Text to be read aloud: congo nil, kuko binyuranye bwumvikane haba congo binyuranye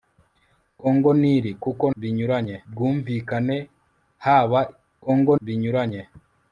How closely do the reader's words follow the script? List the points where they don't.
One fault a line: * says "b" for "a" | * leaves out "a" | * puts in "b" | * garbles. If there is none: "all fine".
all fine